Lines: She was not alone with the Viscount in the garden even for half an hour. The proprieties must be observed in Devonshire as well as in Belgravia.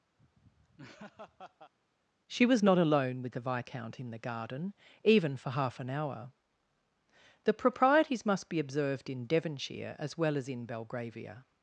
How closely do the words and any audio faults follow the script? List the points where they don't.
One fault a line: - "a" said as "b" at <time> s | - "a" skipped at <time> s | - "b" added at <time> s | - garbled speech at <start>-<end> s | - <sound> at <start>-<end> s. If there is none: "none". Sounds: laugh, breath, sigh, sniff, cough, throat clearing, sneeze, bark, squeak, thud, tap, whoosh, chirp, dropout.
- laugh at 0.2-1.7 s